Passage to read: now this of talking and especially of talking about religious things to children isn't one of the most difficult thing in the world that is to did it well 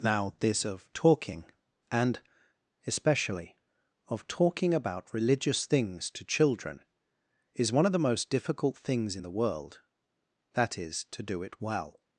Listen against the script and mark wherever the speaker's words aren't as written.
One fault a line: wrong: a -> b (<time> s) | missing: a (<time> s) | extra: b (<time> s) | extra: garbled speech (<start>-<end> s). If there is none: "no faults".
wrong: isn't -> is (7.5 s)
wrong: thing -> things (8.8 s)
wrong: did -> do (11.2 s)